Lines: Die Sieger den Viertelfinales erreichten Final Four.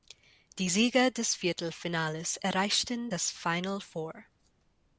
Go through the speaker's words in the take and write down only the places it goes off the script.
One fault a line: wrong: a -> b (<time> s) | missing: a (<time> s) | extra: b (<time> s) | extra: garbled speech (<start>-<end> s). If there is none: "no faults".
wrong: den -> des (1.1 s)
extra: das (3.1 s)